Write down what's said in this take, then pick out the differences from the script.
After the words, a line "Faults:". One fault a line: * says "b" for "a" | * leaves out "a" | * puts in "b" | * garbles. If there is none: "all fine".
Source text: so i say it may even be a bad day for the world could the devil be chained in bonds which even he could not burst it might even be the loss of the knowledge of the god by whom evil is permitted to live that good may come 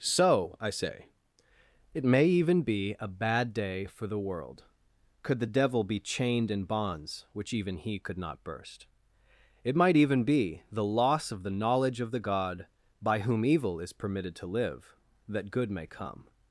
so i say it may even be a bad day for the world could the devil be chained in bonds which even he could not burst it might even be the loss of the knowledge of the god by whom evil is permitted to live that good may come
Faults:
all fine